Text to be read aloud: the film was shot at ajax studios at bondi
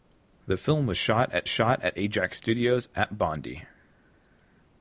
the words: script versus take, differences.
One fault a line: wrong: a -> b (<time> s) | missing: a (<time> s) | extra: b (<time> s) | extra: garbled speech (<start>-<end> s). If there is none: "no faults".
extra: shot at (1.5 s)